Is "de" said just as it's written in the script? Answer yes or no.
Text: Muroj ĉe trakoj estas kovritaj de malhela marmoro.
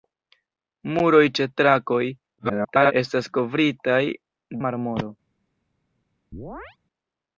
no